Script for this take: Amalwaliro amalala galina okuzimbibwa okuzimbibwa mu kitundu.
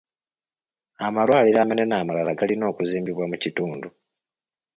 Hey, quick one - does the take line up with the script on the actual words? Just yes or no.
no